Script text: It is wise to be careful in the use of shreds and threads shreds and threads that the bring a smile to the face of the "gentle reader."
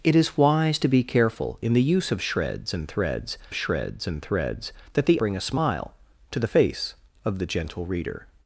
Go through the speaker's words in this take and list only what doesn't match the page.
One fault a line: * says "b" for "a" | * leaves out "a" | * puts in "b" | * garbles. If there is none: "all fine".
all fine